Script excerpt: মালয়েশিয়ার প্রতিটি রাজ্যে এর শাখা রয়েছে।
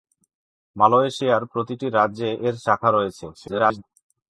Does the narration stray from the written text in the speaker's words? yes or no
yes